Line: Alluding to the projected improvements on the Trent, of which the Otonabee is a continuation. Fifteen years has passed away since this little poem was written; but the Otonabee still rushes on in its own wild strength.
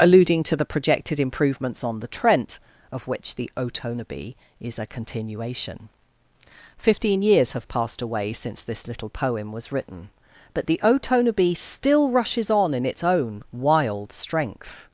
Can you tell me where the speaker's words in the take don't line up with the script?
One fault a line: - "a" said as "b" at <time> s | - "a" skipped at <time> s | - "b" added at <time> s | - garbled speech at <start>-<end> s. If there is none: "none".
- "has" said as "have" at 7.5 s